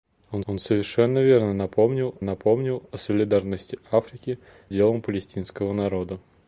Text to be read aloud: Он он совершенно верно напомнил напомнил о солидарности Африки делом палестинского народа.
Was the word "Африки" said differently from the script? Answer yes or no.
no